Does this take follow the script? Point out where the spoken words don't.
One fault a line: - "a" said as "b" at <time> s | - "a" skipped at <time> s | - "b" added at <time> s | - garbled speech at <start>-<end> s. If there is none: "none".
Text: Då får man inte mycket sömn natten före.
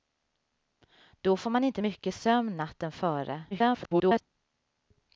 - garbled speech at 3.5-4.2 s